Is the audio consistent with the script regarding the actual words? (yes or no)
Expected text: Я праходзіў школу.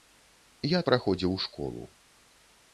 yes